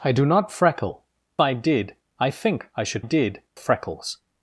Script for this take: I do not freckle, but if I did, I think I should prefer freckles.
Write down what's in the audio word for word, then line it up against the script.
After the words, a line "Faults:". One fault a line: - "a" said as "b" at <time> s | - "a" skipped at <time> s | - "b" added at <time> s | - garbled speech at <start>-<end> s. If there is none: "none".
I do not freckle, I did, I think I should did freckles.
Faults:
- "but if" skipped at 1.0 s
- "prefer" said as "did" at 3.0 s